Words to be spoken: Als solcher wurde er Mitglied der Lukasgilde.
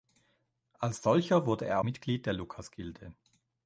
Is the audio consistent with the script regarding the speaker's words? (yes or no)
yes